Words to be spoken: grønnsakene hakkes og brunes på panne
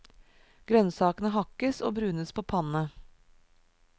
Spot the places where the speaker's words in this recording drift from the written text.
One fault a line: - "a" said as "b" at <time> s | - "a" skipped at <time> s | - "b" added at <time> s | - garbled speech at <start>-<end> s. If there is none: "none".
none